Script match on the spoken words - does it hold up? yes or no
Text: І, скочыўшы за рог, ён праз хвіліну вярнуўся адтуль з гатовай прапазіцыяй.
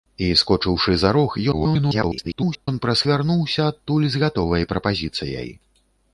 no